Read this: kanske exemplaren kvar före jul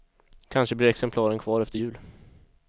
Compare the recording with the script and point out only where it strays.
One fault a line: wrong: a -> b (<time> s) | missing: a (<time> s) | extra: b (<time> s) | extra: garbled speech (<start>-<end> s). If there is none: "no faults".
extra: blir (0.8 s)
wrong: före -> efter (1.6 s)